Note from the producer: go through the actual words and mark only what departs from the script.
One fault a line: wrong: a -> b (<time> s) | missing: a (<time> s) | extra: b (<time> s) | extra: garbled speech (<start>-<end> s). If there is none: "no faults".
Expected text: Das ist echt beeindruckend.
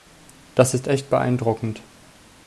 no faults